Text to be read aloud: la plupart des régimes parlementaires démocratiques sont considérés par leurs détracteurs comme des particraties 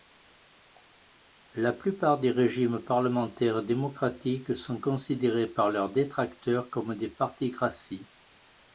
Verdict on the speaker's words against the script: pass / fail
pass